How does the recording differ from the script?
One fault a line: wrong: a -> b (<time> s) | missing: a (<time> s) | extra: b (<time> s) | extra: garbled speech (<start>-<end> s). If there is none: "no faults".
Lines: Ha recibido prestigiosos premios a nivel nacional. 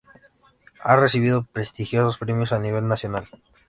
no faults